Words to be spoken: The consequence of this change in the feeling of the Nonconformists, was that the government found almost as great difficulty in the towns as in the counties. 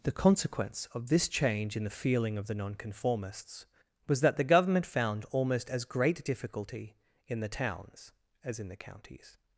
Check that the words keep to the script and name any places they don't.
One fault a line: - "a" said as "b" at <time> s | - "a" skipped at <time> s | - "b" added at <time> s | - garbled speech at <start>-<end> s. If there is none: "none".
none